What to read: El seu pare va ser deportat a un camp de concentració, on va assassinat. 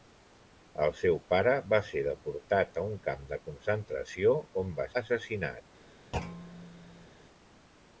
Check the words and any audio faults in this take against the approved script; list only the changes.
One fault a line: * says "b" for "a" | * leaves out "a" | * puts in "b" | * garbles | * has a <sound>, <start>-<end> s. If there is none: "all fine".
* has a thud, 6.1-7.1 s